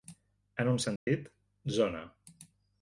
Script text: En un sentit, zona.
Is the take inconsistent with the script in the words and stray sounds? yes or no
yes